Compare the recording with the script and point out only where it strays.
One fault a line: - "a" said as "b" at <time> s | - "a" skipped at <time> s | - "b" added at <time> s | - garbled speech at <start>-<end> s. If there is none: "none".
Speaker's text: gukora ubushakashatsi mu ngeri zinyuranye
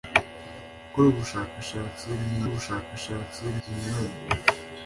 - "ngeri" said as "ubushakashatsi" at 2.4 s